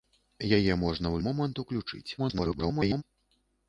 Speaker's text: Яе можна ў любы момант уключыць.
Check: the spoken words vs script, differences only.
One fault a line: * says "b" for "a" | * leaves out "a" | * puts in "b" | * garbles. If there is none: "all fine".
* leaves out "любы"
* garbles